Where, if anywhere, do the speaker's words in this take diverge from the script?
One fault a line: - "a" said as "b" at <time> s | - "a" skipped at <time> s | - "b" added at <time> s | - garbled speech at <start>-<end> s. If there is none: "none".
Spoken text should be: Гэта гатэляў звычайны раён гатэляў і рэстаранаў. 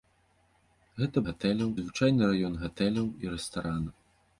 none